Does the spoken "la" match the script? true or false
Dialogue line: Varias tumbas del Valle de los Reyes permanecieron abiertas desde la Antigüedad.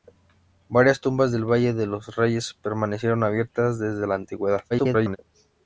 true